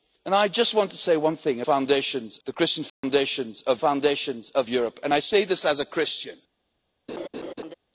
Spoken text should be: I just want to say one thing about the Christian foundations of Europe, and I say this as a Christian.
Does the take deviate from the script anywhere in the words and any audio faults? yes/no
yes